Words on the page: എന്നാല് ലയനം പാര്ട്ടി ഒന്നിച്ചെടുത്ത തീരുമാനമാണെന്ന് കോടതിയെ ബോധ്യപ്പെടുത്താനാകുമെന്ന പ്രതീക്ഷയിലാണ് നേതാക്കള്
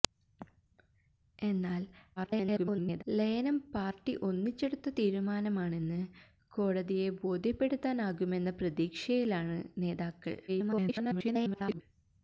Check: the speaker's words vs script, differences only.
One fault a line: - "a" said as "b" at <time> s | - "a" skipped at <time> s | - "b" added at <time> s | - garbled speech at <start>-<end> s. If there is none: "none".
- garbled speech at 2.2-3.0 s
- garbled speech at 10.5-11.8 s